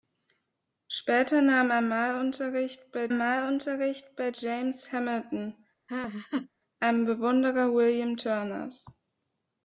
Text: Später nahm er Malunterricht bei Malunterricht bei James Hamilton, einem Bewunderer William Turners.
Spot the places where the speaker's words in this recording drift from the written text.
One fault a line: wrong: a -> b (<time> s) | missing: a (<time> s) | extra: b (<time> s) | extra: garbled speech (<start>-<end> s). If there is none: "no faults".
no faults